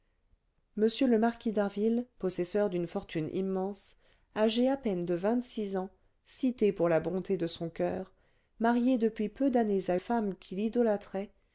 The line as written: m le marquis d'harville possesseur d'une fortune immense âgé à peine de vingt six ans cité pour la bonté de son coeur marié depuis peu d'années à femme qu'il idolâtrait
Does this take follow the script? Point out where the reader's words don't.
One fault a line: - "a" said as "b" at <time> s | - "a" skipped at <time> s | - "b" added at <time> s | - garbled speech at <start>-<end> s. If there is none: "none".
none